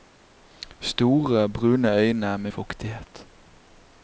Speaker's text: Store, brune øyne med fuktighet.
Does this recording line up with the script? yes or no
yes